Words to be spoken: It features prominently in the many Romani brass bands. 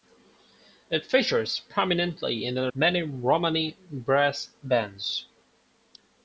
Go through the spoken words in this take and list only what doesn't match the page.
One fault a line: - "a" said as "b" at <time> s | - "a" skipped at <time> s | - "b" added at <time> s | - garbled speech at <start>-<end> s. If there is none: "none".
none